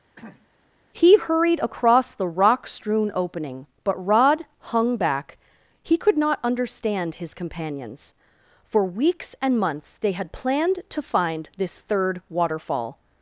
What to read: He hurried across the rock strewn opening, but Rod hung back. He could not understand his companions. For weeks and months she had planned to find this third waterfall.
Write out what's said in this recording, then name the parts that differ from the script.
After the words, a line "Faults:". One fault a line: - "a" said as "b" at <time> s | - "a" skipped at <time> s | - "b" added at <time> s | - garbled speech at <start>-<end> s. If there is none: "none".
He hurried across the rock strewn opening, but Rod hung back. He could not understand his companions. For weeks and months they had planned to find this third waterfall.
Faults:
- "she" said as "they" at 10.0 s